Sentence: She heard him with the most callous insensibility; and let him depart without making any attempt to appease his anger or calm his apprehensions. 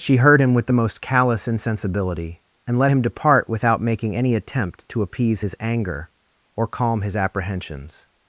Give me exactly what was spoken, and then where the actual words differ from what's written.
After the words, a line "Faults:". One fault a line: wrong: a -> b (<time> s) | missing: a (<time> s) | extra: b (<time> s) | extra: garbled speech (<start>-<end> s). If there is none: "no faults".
She heard him with the most callous insensibility; and let him depart without making any attempt to appease his anger or calm his apprehensions.
Faults:
no faults